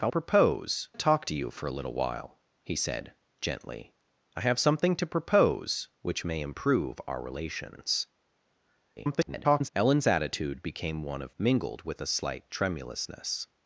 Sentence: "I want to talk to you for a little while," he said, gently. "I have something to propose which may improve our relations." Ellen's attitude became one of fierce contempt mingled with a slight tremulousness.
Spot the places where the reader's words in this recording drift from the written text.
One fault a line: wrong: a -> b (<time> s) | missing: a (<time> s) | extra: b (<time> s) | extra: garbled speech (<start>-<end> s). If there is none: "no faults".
wrong: want -> propose (0.1 s)
extra: garbled speech (9.0-9.7 s)
missing: fierce contempt (11.3 s)